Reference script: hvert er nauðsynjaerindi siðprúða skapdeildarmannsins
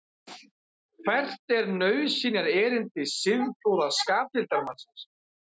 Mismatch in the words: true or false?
false